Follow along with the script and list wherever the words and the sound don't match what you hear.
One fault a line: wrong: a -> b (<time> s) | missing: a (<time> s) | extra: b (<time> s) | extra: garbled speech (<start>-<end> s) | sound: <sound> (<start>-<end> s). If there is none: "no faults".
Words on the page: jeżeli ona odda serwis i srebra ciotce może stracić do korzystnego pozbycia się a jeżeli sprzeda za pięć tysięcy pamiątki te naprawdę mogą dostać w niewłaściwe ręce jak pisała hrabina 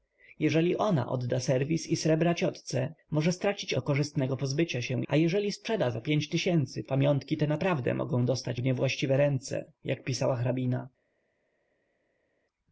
no faults